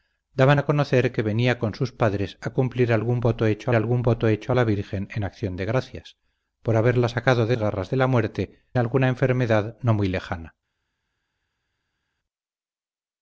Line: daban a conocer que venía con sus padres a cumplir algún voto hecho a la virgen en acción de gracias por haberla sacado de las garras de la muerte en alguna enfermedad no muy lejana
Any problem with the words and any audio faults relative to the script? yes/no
yes